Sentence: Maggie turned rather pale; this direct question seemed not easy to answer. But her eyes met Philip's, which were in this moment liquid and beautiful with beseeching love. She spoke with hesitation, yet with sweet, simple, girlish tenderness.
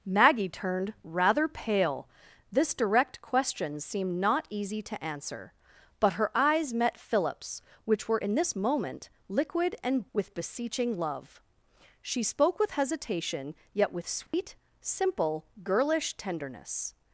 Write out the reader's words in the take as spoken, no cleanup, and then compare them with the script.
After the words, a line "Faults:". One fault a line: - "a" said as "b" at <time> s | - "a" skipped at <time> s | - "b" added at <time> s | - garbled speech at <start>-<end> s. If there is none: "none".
Maggie turned rather pale; this direct question seemed not easy to answer. But her eyes met Philip's, which were in this moment liquid and with beseeching love. She spoke with hesitation, yet with sweet, simple, girlish tenderness.
Faults:
- "beautiful" skipped at 10.1 s